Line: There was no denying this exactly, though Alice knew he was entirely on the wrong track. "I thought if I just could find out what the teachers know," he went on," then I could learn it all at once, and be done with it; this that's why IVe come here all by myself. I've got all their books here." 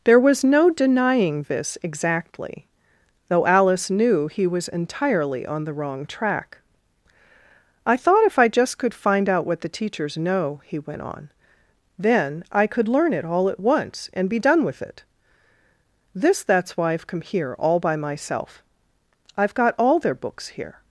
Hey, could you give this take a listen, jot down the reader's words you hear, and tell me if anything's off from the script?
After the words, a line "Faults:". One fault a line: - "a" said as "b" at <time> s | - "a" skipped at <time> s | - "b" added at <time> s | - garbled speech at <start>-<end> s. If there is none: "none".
There was no denying this exactly, though Alice knew he was entirely on the wrong track. "I thought if I just could find out what the teachers know," he went on," then I could learn it all at once, and be done with it; this that's why IVe come here all by myself. I've got all their books here."
Faults:
none